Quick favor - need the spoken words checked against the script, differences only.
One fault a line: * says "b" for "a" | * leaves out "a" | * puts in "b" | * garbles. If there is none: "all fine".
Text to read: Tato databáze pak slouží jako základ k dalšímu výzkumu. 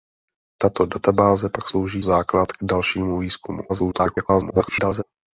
* leaves out "jako"
* garbles